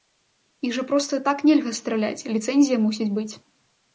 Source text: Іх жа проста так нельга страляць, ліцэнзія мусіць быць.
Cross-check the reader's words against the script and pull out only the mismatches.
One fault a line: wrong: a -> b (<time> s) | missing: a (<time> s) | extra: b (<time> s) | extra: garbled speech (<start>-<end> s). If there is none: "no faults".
no faults